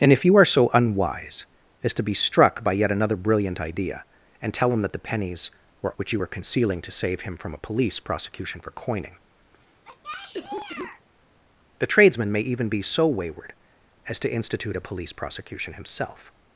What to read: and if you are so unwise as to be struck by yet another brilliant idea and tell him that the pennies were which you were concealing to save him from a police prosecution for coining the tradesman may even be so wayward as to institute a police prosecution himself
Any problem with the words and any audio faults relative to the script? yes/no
yes